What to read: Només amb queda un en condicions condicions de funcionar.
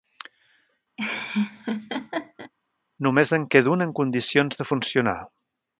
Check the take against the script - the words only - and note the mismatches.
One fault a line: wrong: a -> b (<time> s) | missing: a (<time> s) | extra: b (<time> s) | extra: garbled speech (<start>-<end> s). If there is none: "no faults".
wrong: amb -> en (3.4 s)
missing: condicions (4.6 s)